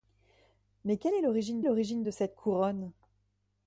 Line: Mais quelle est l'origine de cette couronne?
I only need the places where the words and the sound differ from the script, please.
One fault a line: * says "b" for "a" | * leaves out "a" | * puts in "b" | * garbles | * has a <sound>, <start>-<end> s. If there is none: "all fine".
* puts in "l'origine"